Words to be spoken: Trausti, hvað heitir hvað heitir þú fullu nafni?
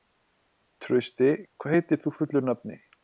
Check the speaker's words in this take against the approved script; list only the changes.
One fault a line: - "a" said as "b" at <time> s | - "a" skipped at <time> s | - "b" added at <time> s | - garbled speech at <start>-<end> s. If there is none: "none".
- "hvað heitir" skipped at 2.0 s